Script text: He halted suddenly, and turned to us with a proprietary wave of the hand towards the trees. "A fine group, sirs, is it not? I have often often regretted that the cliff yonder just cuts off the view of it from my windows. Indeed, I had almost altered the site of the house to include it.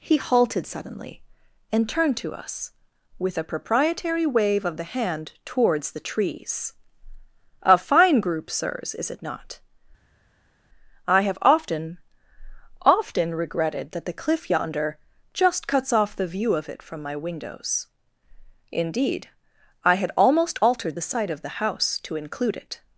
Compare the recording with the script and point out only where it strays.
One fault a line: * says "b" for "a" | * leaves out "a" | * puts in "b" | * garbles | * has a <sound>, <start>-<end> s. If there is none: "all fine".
all fine